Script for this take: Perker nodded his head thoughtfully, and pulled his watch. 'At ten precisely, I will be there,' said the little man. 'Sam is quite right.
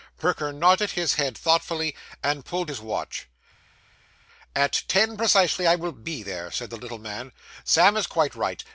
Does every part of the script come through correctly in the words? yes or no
yes